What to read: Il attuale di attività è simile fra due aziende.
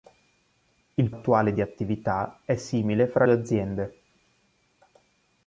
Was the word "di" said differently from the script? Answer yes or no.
no